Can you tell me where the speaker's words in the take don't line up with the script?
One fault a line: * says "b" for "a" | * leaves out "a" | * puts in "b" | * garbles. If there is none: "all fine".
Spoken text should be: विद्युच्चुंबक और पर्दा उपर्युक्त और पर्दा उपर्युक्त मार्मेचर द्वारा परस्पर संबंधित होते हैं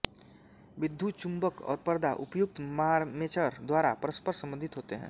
* leaves out "और पर्दा उपर्युक्त"